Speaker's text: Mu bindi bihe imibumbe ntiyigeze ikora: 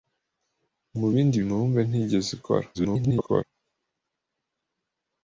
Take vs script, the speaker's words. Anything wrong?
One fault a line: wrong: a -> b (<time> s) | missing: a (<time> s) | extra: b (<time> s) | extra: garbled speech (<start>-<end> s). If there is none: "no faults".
missing: bihe (1.4 s)
extra: garbled speech (2.7-3.4 s)